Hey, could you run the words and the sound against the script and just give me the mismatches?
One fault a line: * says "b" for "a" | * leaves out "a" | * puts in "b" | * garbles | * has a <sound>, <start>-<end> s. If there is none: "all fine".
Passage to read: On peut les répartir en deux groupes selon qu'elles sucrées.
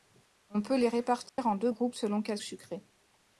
* has a dropout, 1.3-1.4 s